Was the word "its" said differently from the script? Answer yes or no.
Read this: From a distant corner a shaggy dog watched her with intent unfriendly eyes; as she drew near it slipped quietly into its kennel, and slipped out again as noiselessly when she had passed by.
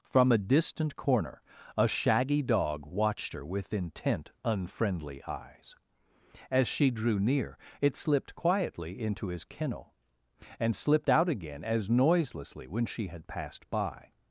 yes